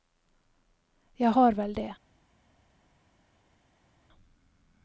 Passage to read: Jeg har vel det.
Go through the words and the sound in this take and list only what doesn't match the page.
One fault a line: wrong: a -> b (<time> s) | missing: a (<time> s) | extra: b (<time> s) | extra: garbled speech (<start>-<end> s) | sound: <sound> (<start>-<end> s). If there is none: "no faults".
no faults